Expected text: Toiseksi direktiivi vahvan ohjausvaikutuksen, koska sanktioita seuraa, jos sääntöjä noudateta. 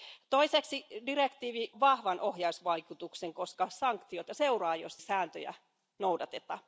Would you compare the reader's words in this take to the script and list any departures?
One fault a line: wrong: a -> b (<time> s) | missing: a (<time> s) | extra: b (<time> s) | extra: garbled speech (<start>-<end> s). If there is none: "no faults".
no faults